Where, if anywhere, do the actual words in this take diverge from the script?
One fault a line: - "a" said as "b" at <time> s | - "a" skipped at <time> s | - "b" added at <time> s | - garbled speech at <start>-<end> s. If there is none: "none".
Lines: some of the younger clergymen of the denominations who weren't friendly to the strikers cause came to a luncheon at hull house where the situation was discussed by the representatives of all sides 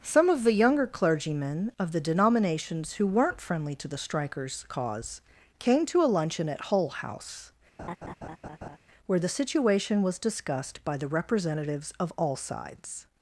none